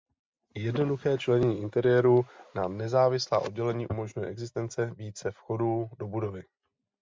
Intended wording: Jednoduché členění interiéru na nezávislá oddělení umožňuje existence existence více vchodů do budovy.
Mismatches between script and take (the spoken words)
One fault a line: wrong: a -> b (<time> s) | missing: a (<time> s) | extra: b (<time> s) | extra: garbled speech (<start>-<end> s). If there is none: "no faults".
missing: existence (4.9 s)